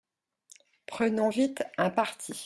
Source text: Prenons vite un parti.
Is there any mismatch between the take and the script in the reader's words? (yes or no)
no